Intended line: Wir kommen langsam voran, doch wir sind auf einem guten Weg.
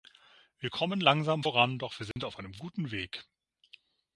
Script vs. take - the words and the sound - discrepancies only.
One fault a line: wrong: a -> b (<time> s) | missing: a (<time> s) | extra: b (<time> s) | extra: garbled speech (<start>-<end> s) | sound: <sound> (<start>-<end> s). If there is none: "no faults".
sound: dropout (2.1-2.2 s)